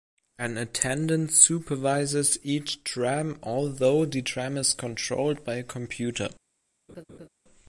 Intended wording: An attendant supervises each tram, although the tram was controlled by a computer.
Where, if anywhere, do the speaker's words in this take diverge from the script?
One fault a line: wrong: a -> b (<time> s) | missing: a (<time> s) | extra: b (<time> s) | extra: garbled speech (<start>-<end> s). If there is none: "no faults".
wrong: was -> is (4.6 s)